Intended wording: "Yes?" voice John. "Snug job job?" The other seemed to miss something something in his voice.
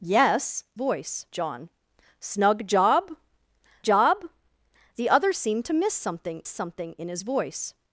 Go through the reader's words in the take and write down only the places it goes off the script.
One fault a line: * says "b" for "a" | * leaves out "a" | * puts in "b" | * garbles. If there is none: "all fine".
all fine